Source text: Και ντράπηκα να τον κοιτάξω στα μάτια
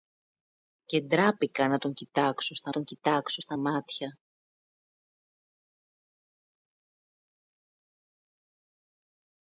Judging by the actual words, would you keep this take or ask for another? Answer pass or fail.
fail